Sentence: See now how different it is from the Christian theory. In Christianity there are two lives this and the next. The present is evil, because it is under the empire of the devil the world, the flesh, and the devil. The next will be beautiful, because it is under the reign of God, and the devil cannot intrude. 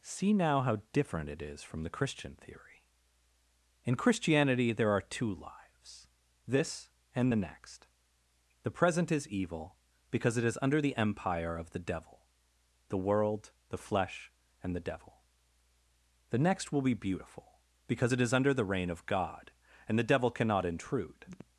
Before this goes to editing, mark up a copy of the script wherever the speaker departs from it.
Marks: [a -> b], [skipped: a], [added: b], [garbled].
See now how different it is from the Christian theory. In Christianity there are two lives this and the next. The present is evil, because it is under the empire of the devil the world, the flesh, and the devil. The next will be beautiful, because it is under the reign of God, and the devil cannot intrude.